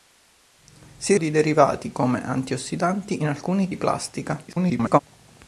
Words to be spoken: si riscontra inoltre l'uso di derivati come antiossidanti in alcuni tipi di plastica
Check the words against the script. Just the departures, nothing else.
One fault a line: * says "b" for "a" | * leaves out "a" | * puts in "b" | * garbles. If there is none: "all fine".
* leaves out "riscontra inoltre l'uso"
* leaves out "tipi"
* garbles